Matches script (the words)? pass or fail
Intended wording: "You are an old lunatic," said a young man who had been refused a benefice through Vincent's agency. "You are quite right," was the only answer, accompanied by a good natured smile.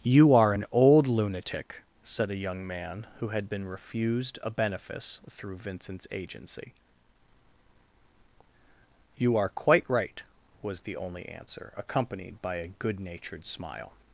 pass